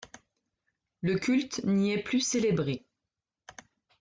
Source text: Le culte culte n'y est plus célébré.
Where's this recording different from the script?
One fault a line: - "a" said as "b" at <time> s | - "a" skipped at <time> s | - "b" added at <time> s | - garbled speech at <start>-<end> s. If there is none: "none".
- "culte" skipped at 1.6 s